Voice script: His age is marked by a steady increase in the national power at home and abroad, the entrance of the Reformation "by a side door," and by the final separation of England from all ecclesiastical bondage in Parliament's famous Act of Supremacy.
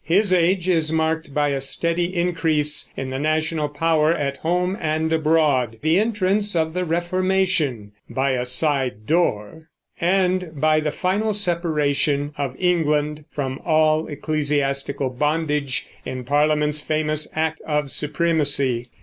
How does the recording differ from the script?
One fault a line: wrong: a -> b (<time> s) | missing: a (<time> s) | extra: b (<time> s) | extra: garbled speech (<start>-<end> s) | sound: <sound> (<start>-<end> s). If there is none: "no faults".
no faults